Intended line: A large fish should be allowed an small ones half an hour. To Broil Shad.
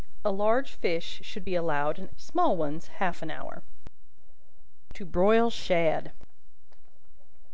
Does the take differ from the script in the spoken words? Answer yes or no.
no